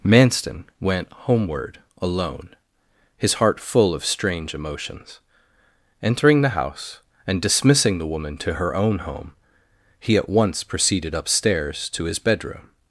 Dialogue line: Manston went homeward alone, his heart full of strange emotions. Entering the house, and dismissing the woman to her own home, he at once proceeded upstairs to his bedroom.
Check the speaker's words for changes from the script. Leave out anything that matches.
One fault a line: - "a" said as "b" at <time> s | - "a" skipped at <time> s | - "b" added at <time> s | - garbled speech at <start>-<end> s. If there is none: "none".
none